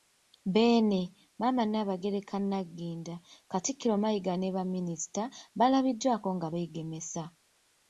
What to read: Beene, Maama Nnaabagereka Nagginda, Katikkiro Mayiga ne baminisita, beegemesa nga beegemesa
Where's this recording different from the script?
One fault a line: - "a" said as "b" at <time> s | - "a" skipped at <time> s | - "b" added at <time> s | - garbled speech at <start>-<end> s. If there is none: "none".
- "beegemesa" said as "baalabiddwako" at 5.6 s